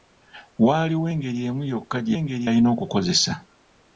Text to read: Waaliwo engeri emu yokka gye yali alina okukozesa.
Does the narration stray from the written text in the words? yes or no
yes